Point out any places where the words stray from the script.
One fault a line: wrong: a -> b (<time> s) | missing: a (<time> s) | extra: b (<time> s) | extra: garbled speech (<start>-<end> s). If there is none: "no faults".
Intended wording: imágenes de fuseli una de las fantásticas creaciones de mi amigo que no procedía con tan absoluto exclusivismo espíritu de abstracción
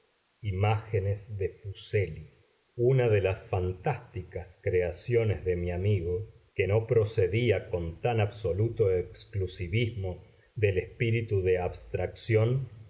extra: del (10.6 s)